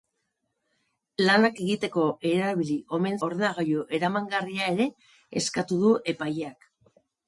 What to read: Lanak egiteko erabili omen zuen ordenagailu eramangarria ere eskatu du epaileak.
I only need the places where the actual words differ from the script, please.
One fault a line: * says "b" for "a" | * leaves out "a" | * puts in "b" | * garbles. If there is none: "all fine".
* leaves out "zuen"